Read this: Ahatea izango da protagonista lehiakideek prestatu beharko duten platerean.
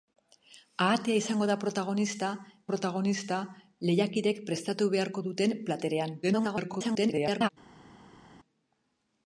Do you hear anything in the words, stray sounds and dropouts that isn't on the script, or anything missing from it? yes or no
yes